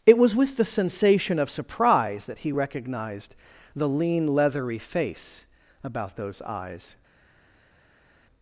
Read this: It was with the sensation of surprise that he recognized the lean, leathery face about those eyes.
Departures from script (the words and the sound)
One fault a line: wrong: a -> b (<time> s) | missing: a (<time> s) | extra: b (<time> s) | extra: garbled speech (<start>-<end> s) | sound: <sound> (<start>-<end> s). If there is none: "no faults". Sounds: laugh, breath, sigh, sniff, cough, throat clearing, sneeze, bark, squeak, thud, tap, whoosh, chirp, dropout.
no faults